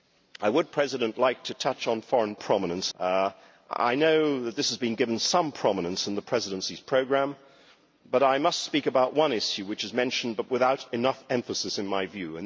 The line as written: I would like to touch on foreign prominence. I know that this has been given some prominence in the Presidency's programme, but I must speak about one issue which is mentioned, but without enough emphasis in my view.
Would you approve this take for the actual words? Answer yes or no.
yes